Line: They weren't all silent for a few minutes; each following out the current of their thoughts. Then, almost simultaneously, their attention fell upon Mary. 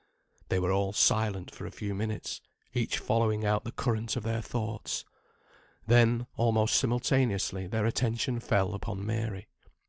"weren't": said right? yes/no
no